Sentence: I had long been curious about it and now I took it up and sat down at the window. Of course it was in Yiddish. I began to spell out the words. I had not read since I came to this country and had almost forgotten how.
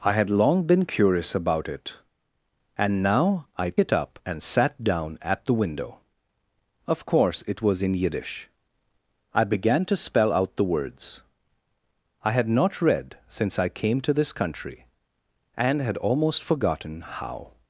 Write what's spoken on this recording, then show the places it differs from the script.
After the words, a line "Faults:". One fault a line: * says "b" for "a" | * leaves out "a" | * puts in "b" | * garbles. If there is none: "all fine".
I had long been curious about it and now I it up and sat down at the window. Of course it was in Yiddish. I began to spell out the words. I had not read since I came to this country and had almost forgotten how.
Faults:
* leaves out "took"